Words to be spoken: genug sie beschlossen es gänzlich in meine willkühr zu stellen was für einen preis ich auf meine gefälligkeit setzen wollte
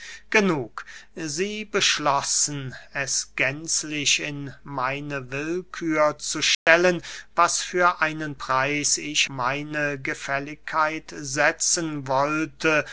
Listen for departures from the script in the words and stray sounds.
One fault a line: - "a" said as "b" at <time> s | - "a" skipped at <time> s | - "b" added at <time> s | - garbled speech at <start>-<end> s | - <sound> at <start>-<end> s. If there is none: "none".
- dropout at 6.5-6.7 s
- "auf" skipped at 9.3 s